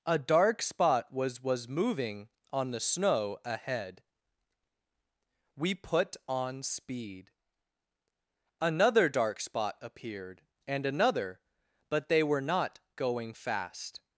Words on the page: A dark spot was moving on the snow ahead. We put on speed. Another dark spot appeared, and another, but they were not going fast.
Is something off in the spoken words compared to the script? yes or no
yes